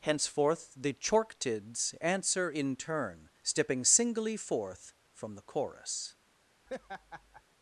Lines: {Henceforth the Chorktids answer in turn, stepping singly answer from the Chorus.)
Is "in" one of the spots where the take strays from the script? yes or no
no